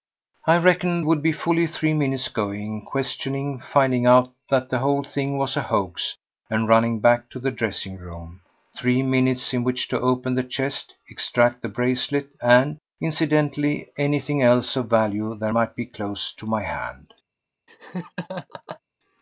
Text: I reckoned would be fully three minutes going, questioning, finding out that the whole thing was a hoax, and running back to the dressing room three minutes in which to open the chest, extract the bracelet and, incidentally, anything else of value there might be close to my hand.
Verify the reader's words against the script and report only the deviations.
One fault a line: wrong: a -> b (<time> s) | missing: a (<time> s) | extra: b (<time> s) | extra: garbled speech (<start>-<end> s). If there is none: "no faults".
no faults